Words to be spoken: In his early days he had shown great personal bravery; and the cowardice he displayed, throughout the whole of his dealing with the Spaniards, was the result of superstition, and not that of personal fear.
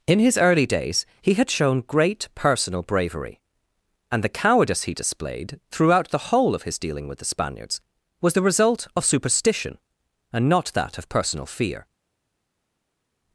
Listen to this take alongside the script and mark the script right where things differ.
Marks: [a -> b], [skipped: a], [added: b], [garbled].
In his early days he had shown great personal bravery; and the cowardice he displayed, throughout the whole of his dealing with the Spaniards, was the result of superstition, and not that of personal fear.